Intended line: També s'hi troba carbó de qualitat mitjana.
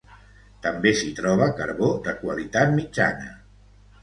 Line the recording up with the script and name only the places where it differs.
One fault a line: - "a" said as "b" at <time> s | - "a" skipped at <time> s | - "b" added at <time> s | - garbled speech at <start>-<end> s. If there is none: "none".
none